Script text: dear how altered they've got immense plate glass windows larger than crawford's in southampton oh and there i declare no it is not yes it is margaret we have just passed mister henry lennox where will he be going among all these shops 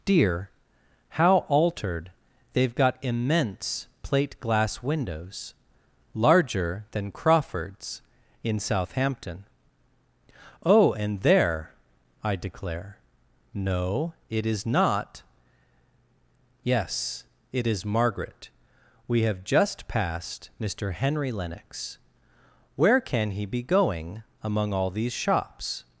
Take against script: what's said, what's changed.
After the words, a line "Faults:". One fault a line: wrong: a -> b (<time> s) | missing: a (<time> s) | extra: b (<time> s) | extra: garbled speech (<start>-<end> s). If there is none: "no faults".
dear how altered they've got immense plate glass windows larger than crawford's in southampton oh and there i declare no it is not yes it is margaret we have just passed mister henry lennox where can he be going among all these shops
Faults:
wrong: will -> can (23.0 s)